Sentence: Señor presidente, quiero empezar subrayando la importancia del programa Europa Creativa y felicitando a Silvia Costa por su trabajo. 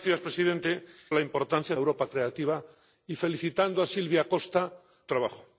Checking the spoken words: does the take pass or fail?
fail